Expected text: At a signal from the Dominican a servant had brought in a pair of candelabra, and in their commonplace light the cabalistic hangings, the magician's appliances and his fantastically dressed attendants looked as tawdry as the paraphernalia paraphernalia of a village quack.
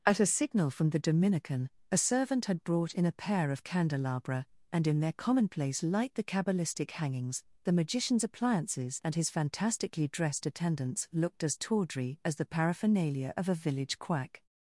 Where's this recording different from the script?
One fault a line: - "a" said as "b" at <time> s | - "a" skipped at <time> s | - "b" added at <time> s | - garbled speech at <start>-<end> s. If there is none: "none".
- "paraphernalia" skipped at 13.3 s